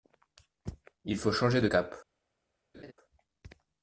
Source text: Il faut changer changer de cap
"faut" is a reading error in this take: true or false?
false